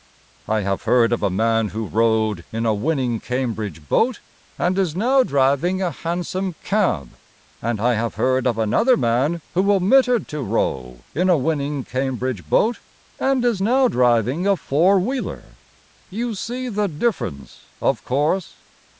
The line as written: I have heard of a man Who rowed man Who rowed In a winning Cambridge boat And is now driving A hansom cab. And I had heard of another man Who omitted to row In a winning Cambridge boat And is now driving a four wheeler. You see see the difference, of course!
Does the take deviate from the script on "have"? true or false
false